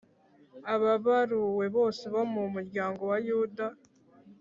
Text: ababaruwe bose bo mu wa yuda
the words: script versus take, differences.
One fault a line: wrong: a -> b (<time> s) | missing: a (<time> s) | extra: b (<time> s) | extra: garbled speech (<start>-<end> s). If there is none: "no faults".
extra: muryango (2.5 s)